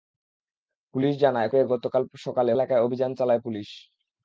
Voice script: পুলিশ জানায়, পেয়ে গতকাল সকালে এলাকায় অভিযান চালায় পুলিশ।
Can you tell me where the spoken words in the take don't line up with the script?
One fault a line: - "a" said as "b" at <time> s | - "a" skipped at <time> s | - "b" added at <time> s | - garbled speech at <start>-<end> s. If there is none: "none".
none